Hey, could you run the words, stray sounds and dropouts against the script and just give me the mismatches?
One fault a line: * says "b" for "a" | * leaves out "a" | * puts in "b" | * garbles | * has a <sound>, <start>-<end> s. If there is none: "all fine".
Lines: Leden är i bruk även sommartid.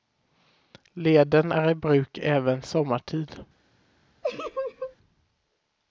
* has a laugh, 4.2-5.0 s